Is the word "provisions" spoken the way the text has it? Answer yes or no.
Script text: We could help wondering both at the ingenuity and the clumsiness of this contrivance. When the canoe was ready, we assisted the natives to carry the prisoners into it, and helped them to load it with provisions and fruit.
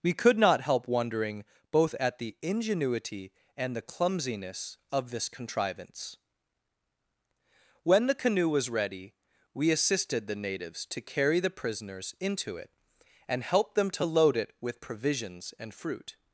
yes